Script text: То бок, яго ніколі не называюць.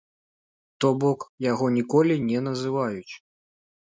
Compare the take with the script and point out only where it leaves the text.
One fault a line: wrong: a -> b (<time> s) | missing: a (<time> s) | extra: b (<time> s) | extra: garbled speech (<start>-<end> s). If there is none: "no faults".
no faults